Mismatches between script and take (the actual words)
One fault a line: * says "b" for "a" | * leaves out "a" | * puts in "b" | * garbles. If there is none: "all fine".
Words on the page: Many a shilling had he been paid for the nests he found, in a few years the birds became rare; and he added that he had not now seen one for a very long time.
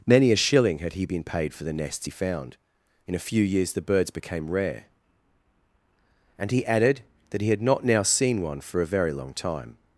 all fine